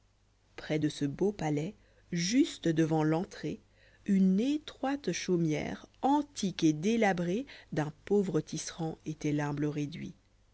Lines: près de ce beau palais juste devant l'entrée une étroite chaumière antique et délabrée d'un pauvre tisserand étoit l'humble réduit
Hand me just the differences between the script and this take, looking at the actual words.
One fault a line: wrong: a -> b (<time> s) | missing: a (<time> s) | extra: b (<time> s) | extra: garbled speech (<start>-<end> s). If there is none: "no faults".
no faults